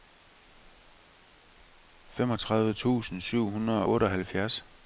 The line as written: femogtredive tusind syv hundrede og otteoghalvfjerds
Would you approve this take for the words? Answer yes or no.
no